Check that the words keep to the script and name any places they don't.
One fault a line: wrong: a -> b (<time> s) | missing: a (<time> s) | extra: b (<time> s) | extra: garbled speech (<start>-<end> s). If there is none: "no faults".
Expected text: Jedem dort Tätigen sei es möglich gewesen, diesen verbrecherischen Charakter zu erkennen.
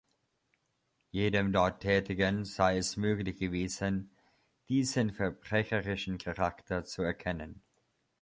no faults